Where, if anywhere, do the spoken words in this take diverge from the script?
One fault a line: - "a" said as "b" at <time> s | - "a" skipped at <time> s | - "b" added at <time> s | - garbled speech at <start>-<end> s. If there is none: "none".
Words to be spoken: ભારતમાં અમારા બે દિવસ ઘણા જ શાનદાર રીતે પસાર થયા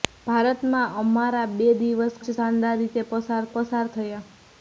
- "ઘણા" skipped at 2.1 s
- "પસાર" added at 3.5 s